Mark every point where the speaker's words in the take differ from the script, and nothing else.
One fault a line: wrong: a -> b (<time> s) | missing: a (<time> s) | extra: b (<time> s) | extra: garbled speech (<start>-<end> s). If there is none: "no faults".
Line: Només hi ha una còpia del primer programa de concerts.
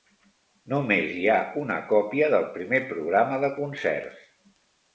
no faults